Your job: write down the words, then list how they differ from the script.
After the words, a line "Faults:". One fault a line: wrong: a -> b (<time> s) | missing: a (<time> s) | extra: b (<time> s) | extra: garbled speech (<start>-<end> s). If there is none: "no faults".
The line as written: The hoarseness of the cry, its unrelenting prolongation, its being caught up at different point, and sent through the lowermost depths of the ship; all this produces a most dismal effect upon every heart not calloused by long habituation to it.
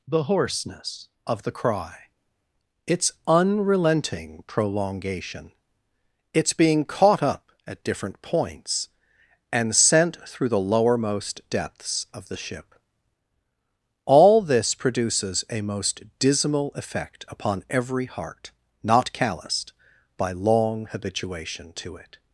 The hoarseness of the cry, its unrelenting prolongation, its being caught up at different points, and sent through the lowermost depths of the ship; all this produces a most dismal effect upon every heart not calloused by long habituation to it.
Faults:
wrong: point -> points (8.2 s)